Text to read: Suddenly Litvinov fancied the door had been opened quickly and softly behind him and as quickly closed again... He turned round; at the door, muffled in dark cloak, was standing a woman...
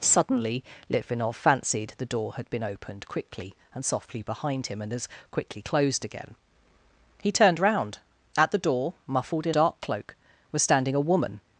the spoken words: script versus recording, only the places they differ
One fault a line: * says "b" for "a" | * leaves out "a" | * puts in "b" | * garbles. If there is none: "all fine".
all fine